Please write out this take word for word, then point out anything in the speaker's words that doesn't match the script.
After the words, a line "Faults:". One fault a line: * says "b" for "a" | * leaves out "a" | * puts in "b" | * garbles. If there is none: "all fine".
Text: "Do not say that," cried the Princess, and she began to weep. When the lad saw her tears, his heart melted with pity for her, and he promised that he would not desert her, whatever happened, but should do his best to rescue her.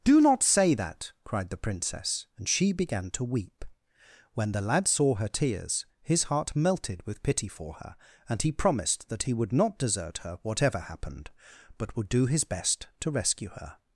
"Do not say that," cried the Princess, and she began to weep. When the lad saw her tears, his heart melted with pity for her, and he promised that he would not desert her, whatever happened, but would do his best to rescue her.
Faults:
* says "would" for "should"